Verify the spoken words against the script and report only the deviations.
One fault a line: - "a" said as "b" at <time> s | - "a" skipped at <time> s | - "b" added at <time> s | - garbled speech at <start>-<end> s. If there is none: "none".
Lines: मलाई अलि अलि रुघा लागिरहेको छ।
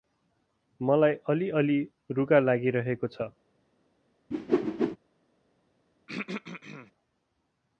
none